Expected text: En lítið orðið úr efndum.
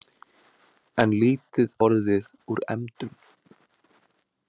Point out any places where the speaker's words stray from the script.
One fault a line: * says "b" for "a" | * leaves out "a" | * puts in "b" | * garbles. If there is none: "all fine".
all fine